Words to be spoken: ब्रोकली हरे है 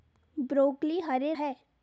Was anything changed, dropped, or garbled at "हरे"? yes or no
no